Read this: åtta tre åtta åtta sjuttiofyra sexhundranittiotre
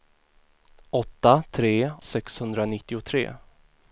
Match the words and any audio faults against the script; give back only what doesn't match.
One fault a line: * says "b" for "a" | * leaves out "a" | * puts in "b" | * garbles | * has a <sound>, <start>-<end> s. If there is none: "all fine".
* leaves out "åtta åtta sjuttiofyra"